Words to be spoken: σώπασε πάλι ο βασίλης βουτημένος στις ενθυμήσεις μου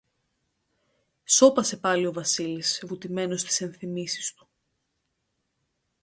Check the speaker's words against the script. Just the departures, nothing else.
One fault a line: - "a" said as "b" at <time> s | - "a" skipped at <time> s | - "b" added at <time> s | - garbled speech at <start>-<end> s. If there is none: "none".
- "μου" said as "του" at 4.3 s